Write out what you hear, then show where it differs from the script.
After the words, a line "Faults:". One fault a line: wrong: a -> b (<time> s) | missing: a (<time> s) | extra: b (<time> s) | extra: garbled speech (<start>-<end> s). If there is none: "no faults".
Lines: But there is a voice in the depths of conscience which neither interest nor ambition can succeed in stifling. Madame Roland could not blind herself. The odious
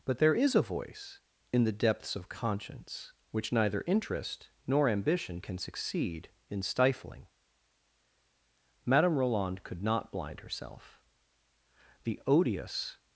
But there is a voice in the depths of conscience which neither interest nor ambition can succeed in stifling. Madame Roland could not blind herself. The odious
Faults:
no faults